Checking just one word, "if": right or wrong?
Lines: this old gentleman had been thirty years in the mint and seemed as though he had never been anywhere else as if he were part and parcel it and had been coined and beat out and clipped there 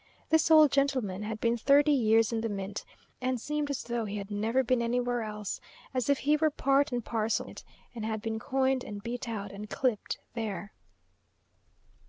right